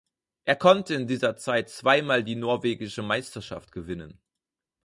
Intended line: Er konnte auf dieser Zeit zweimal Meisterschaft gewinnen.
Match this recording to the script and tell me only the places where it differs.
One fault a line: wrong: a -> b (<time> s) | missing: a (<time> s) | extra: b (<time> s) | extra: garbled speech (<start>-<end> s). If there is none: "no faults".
wrong: auf -> in (0.9 s)
extra: die norwegische (2.2 s)